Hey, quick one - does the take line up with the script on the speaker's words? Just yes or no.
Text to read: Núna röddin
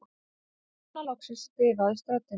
no